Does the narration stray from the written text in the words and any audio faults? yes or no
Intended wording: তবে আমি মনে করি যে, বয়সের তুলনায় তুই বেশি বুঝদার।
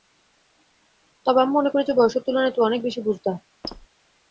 yes